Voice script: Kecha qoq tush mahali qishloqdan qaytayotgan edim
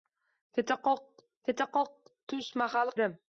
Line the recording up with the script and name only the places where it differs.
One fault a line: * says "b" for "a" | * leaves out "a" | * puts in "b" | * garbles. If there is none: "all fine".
* puts in "kecha qoq"
* leaves out "qishloqdan qaytayotgan"